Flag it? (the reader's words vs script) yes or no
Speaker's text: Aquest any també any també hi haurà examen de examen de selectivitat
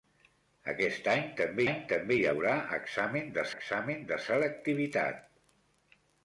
no